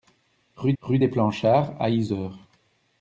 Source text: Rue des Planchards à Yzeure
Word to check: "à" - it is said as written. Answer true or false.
true